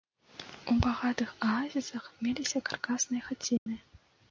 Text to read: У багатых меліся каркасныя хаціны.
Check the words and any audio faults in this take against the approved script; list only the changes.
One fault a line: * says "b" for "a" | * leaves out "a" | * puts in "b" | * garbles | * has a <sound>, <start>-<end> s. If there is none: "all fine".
* puts in "аазісах"
* has a dropout, 3.6-3.7 s